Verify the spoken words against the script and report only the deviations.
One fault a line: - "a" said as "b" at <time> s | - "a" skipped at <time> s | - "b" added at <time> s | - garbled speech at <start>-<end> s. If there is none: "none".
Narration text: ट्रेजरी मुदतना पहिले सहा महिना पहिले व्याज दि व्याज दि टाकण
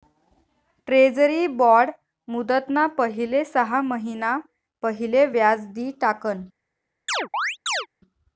- "बॉड" added at 1.6 s
- "व्याज दि" skipped at 5.9 s